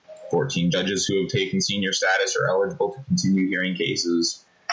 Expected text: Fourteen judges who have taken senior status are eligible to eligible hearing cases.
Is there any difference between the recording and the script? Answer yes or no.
yes